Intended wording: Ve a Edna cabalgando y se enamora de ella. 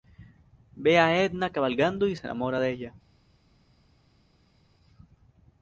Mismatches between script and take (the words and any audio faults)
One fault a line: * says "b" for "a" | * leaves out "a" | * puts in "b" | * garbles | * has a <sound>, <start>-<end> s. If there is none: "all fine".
all fine